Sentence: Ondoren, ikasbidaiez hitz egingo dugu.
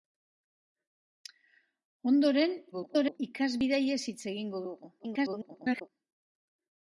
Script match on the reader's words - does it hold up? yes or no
no